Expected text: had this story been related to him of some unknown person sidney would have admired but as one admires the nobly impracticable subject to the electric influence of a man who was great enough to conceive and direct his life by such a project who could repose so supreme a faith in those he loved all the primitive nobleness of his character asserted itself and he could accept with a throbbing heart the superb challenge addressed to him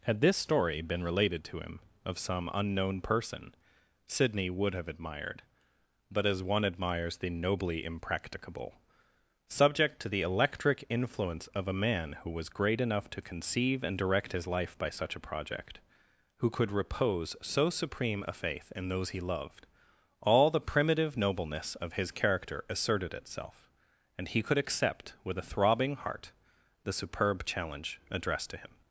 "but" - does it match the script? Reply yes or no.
yes